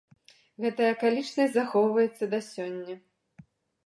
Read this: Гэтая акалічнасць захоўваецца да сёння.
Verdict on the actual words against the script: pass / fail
pass